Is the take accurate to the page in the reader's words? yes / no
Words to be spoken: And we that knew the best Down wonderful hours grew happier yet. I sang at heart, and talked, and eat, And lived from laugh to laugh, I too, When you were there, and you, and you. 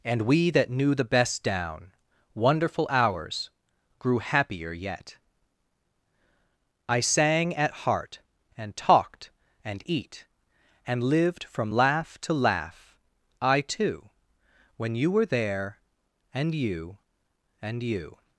yes